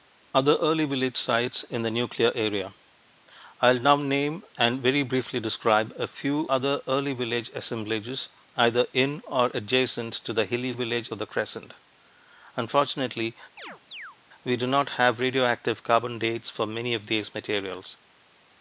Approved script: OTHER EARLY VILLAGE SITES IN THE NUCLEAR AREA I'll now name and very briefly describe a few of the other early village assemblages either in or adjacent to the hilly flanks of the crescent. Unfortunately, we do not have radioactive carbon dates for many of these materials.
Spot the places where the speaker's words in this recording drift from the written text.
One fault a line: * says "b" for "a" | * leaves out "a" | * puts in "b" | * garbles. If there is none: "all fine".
* leaves out "of the"
* says "village" for "flanks"